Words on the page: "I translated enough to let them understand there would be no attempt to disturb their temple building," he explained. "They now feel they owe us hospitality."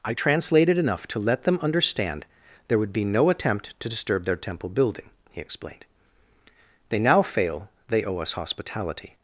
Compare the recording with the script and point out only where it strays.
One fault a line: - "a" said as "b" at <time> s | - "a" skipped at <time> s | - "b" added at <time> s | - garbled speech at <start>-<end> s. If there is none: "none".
- "feel" said as "fail" at 7.2 s